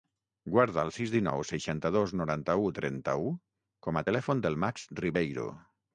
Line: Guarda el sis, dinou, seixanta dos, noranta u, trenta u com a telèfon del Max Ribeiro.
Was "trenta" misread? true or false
false